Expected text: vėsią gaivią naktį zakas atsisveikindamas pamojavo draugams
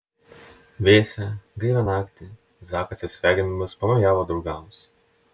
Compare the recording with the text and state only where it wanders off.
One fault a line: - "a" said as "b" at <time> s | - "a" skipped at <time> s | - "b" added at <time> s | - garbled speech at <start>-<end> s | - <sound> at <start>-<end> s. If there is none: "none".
none